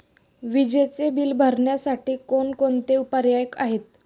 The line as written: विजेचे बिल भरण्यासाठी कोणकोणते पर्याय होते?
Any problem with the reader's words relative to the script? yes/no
yes